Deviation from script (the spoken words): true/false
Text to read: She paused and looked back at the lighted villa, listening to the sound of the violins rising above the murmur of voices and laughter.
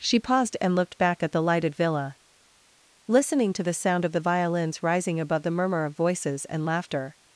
false